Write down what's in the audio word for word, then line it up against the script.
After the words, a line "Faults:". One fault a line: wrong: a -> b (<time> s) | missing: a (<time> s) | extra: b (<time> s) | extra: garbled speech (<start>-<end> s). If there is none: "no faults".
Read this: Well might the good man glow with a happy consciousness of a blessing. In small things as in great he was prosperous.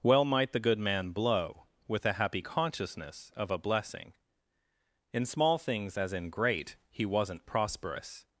Well might the good man blow with a happy consciousness of a blessing. In small things as in great he wasn't prosperous.
Faults:
wrong: glow -> blow (1.1 s)
wrong: was -> wasn't (7.0 s)